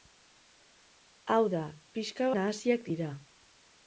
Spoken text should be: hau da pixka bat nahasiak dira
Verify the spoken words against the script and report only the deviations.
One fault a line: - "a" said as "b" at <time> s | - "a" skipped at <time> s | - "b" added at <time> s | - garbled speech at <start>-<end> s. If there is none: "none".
- "bat" skipped at 2.3 s